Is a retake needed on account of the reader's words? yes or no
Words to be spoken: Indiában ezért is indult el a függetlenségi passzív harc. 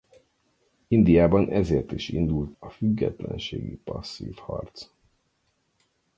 yes